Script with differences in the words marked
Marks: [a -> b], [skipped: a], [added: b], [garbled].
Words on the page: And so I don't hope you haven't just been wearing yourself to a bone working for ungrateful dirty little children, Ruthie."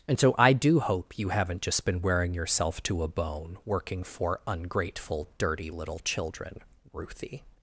And so I [don't -> do] hope you haven't just been wearing yourself to a bone working for ungrateful dirty little children, Ruthie."